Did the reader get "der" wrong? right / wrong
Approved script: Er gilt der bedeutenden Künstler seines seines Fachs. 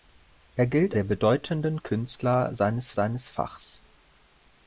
right